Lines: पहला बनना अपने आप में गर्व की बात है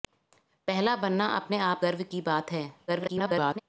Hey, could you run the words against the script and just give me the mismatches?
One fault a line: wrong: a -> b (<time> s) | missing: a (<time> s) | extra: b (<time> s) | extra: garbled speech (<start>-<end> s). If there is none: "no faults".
missing: में (1.8 s)
extra: garbled speech (2.9-3.6 s)